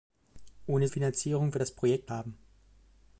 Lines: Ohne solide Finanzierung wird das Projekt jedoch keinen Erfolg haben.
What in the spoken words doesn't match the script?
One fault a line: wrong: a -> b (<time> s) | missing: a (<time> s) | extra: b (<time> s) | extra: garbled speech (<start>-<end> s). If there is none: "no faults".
missing: solide (0.9 s)
missing: jedoch keinen Erfolg (2.1 s)